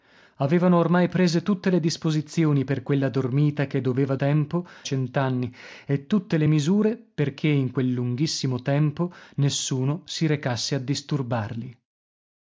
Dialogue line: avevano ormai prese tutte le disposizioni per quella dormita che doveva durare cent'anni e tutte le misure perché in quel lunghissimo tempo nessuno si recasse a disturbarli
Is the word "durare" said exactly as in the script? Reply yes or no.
no